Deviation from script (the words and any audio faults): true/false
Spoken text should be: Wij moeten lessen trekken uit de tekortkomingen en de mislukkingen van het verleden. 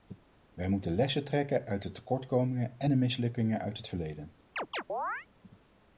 true